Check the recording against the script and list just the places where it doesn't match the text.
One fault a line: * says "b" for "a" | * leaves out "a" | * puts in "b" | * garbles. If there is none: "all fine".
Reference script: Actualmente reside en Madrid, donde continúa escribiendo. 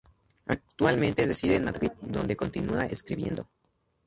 all fine